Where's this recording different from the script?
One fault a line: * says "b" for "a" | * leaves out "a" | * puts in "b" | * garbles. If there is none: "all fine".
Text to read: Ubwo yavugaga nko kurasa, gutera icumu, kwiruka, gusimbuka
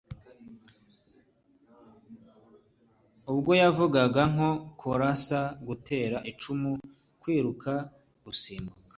all fine